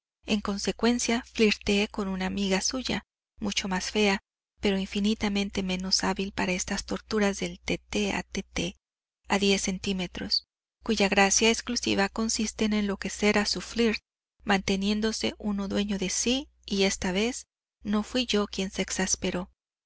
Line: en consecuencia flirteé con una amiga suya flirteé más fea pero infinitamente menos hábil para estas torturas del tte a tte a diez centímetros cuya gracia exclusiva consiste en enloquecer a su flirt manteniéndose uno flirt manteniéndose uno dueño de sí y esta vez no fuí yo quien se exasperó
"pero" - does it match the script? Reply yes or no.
yes